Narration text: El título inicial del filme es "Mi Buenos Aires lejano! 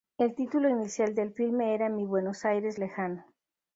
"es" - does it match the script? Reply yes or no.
no